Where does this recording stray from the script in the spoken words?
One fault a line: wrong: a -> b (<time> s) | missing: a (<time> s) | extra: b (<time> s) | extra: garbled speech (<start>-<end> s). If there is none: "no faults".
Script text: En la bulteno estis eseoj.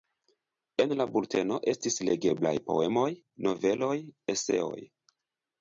extra: legeblaj poemoj noveloj (2.1 s)